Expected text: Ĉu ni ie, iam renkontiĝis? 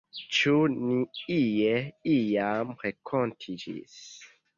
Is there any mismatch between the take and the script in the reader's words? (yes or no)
no